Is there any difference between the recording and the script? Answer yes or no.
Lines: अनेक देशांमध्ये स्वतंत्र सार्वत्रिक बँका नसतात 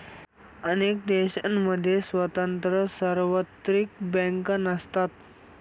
no